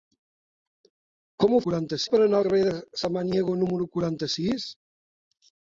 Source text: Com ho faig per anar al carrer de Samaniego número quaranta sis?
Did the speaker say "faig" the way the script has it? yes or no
no